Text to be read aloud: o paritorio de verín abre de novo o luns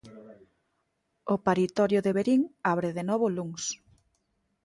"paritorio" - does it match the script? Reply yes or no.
yes